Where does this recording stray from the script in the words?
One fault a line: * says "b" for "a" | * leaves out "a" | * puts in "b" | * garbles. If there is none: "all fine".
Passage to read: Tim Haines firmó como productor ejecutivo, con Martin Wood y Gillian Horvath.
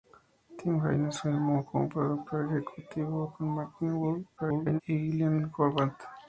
* garbles